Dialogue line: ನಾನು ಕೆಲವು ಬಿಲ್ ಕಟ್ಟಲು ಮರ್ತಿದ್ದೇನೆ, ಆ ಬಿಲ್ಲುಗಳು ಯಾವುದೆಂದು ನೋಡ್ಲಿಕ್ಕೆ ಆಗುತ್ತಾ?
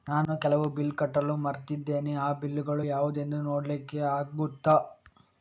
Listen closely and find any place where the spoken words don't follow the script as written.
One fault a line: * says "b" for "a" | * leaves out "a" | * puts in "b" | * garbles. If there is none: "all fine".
all fine